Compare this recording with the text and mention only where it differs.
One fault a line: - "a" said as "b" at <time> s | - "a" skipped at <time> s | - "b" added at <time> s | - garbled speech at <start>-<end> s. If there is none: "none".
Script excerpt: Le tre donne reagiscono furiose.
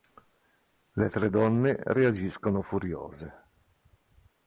none